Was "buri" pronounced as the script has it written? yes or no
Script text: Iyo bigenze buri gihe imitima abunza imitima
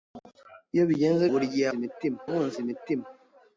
yes